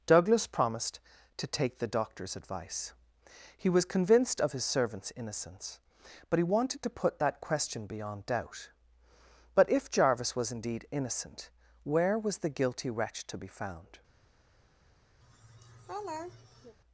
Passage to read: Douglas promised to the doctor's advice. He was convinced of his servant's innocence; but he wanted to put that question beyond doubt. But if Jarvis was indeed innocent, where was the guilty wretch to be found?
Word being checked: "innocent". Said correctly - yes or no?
yes